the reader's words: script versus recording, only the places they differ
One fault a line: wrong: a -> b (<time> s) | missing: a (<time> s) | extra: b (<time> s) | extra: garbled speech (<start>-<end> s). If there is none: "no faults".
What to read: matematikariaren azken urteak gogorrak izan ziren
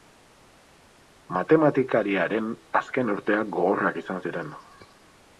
no faults